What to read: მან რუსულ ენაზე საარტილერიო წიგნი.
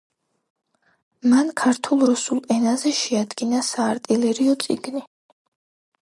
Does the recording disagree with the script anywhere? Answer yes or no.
yes